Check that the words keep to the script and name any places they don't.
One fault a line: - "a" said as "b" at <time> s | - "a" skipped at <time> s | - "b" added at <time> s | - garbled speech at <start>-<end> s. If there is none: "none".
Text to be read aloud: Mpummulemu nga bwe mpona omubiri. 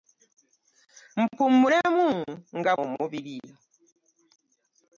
- "bwe mpona" skipped at 2.7 s